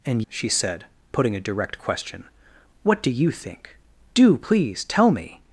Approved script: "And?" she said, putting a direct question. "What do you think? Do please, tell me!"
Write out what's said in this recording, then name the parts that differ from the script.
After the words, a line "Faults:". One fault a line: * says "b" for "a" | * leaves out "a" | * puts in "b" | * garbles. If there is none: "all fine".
"And?" she said, putting a direct question. "What do you think? Do please, tell me!"
Faults:
all fine